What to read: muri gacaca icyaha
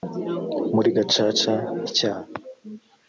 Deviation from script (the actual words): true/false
false